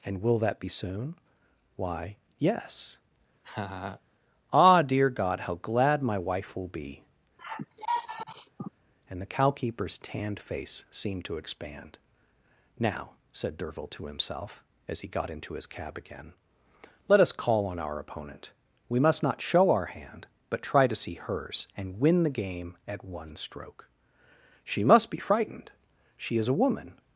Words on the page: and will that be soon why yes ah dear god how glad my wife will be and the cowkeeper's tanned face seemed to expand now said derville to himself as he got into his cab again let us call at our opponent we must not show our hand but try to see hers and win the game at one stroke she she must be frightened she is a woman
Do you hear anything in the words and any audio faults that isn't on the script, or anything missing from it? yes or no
yes